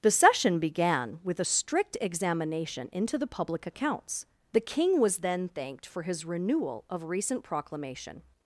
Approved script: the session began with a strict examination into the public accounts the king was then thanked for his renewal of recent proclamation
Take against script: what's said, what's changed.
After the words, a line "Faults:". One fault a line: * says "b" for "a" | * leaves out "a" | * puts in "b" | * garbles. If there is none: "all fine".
the session began with a strict examination into the public accounts the king was then thanked for his renewal of recent proclamation
Faults:
all fine